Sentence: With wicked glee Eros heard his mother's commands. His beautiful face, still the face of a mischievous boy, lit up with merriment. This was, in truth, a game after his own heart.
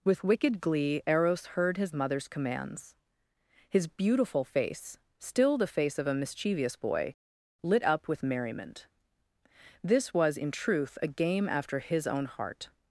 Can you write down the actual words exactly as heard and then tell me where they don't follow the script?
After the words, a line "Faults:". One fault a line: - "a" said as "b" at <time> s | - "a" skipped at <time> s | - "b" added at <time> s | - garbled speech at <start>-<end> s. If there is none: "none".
With wicked glee Eros heard his mother's commands. His beautiful face, still the face of a mischievous boy, lit up with merriment. This was, in truth, a game after his own heart.
Faults:
none